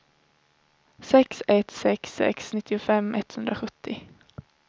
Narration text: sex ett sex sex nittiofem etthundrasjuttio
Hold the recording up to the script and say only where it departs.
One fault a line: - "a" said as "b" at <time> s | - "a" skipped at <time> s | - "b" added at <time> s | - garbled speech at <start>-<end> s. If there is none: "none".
none